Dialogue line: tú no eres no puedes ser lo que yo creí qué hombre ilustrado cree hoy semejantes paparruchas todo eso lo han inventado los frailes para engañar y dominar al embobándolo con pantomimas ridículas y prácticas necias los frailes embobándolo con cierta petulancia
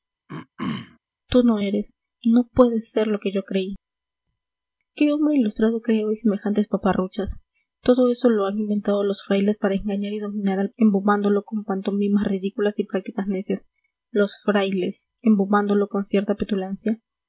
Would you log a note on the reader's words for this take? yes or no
no